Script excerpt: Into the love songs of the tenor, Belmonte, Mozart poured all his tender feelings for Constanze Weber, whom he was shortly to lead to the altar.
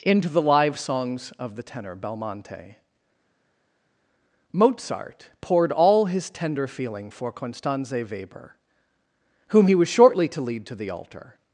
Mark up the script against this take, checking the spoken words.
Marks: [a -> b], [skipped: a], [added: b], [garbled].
Into the [love -> live] songs of the tenor, Belmonte, Mozart poured all his tender [feelings -> feeling] for Constanze Weber, whom he was shortly to lead to the altar.